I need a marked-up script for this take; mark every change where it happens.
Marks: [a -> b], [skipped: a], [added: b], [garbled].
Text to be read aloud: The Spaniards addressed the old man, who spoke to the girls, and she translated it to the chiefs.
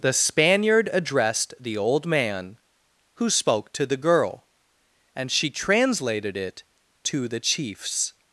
The [Spaniards -> Spaniard] addressed the old man, who spoke to the [girls, -> girl] and she translated it to the chiefs.